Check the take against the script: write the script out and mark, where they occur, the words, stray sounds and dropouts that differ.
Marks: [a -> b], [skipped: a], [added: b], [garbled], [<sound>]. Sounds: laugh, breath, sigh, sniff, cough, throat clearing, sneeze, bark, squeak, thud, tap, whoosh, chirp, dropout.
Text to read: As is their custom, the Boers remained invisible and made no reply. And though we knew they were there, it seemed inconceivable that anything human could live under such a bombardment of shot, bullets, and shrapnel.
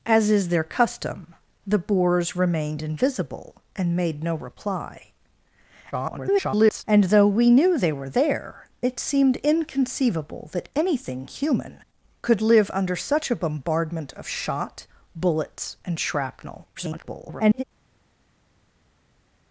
As is their custom, the Boers remained invisible and made no reply. [garbled] And though we knew they were there, it seemed inconceivable that anything human could live under such a bombardment of shot, bullets, and shrapnel. [garbled]